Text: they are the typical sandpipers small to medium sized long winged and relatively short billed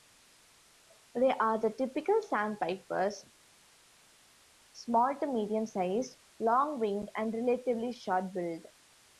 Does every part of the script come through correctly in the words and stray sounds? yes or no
yes